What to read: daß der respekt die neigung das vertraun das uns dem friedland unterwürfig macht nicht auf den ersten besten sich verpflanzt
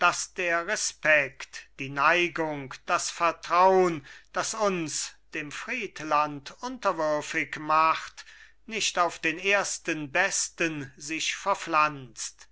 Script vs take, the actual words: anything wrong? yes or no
no